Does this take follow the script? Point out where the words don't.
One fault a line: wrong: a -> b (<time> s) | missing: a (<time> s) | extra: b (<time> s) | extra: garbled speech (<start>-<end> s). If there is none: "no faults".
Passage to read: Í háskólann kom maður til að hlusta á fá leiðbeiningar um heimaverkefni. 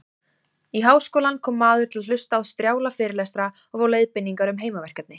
extra: strjála fyrirlestra og (2.5 s)